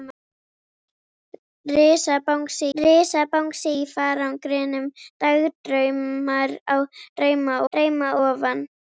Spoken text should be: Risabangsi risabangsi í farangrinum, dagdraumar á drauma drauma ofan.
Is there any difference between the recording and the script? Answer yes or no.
no